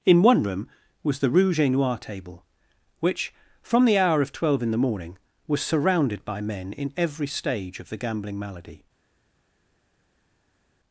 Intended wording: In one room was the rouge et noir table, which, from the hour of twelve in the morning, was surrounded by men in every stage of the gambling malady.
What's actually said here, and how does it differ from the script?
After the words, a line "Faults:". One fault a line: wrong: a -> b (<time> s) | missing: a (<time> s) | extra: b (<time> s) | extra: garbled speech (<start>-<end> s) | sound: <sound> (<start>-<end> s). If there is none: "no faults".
In one room was the rouge et noir table, which, from the hour of twelve in the morning, was surrounded by men in every stage of the gambling malady.
Faults:
no faults